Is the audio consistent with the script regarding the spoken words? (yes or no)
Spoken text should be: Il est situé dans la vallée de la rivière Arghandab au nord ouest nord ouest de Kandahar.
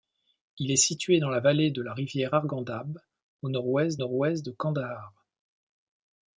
yes